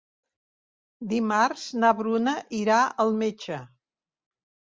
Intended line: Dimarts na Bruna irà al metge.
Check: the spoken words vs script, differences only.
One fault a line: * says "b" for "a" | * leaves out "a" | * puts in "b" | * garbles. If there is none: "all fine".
all fine